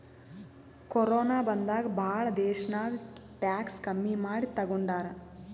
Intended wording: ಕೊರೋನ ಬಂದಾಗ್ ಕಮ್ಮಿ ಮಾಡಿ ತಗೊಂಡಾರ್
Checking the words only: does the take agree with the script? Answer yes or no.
no